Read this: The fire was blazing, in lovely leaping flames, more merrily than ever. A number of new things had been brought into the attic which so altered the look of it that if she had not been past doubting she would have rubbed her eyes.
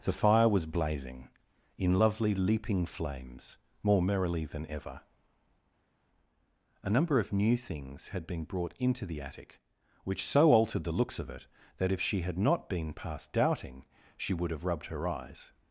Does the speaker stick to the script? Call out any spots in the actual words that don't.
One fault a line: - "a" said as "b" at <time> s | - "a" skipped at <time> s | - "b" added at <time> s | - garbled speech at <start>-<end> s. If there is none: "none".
- "look" said as "looks" at 10.9 s